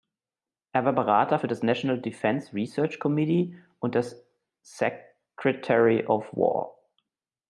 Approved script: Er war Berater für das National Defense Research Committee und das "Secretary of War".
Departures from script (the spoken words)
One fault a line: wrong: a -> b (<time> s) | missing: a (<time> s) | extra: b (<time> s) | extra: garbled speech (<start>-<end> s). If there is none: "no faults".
no faults